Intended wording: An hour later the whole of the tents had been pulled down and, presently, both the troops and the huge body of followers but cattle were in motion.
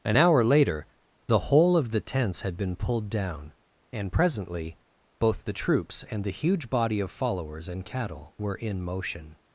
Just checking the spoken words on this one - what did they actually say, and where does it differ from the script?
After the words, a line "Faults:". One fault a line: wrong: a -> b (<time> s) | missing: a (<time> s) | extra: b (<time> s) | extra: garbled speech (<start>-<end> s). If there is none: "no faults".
An hour later the whole of the tents had been pulled down and, presently, both the troops and the huge body of followers and cattle were in motion.
Faults:
wrong: but -> and (7.7 s)